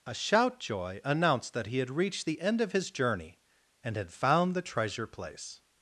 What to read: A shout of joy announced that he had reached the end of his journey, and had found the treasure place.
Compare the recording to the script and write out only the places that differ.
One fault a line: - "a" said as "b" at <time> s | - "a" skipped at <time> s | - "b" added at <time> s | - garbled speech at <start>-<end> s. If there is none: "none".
- "of" skipped at 0.6 s